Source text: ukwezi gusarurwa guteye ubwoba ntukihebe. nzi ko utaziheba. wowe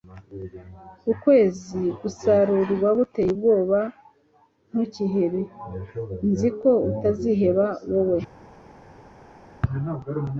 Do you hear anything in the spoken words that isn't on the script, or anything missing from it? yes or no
no